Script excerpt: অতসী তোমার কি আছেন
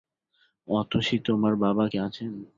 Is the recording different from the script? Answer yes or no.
yes